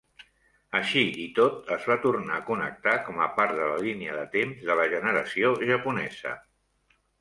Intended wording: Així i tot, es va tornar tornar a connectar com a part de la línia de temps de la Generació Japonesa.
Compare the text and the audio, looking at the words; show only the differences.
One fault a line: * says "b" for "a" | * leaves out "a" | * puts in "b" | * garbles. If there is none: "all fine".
* leaves out "tornar"